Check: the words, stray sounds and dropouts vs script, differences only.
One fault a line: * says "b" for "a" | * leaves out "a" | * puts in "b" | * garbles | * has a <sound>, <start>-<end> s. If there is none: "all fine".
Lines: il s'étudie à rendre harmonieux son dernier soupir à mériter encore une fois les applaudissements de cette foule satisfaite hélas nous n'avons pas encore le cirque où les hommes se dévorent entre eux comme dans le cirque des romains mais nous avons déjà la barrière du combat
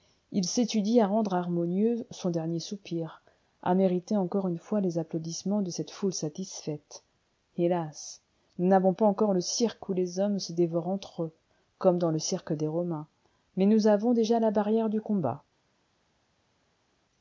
all fine